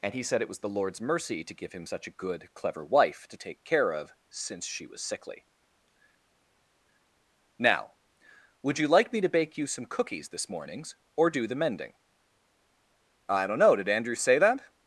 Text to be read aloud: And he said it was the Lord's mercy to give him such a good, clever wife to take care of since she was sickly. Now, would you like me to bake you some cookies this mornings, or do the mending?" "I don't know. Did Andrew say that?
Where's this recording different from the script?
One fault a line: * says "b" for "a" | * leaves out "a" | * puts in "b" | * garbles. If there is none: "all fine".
all fine